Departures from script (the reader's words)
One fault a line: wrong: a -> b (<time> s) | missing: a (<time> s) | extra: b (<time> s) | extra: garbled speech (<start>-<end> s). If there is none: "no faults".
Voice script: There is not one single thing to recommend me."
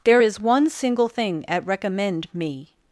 missing: not (0.4 s)
wrong: to -> at (1.5 s)